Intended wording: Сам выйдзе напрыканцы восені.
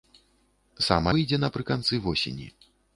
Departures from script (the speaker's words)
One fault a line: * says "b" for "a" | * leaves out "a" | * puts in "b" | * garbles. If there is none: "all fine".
all fine